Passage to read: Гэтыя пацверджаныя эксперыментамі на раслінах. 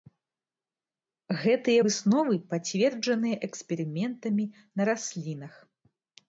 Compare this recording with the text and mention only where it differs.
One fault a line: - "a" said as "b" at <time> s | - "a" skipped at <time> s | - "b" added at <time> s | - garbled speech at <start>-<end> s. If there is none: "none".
- "высновы" added at 1.9 s